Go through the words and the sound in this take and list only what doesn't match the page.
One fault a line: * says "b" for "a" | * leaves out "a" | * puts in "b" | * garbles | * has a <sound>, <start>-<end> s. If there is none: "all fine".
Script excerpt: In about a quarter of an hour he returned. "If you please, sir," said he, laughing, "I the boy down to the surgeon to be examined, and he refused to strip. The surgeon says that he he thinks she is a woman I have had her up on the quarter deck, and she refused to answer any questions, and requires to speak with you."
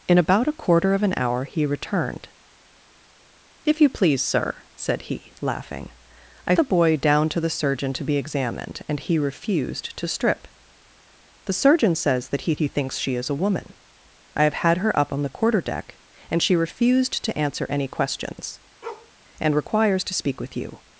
* has a bark, 18.8-19.1 s